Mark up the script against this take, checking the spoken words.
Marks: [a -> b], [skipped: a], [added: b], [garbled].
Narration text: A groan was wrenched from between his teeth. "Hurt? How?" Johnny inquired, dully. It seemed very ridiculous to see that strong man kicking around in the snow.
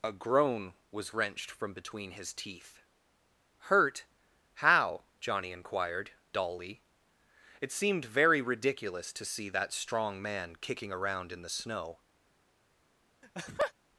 A groan was wrenched from between his teeth. "Hurt? How?" Johnny inquired, dully. It seemed very ridiculous to see that strong man kicking around in the snow.